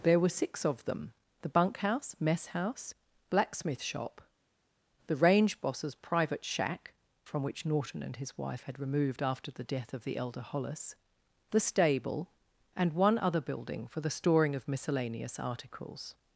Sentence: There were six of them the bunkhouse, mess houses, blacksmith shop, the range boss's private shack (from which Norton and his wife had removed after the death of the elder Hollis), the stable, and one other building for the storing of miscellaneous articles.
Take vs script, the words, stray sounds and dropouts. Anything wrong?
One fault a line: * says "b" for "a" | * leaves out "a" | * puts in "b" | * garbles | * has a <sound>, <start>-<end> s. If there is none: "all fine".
* says "house" for "houses"